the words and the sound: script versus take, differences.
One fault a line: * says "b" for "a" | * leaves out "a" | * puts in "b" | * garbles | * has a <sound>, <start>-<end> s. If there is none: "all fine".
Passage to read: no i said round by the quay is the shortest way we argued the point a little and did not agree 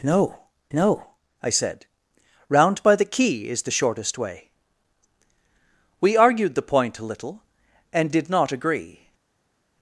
* puts in "no"